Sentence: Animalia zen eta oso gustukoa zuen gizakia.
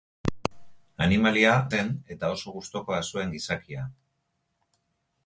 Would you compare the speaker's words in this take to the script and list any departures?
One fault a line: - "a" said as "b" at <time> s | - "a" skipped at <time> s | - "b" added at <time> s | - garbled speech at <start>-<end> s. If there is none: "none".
none